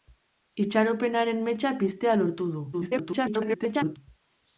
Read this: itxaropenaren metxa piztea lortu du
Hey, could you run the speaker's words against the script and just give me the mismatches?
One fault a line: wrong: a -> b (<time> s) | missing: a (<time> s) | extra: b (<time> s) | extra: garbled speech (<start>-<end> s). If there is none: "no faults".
extra: garbled speech (2.7-4.0 s)